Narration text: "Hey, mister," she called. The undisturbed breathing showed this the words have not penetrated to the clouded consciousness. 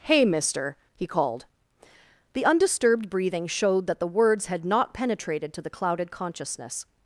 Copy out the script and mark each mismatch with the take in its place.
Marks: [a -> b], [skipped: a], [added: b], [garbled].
"Hey, mister," [she -> he] called. The undisturbed breathing showed [this -> that] the words [have -> had] not penetrated to the clouded consciousness.